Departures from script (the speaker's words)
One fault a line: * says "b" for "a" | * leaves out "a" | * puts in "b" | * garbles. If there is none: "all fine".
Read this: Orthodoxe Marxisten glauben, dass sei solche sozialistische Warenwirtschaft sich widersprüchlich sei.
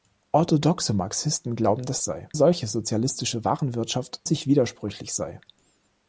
all fine